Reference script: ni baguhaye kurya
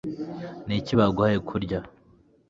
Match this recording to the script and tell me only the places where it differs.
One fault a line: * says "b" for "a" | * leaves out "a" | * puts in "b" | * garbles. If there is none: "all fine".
* puts in "iki"